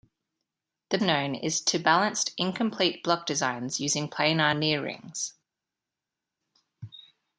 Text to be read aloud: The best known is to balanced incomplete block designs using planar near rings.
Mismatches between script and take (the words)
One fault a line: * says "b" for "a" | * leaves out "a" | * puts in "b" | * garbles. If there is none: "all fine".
* leaves out "best"